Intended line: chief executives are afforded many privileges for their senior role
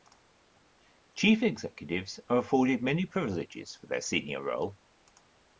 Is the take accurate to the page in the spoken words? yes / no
yes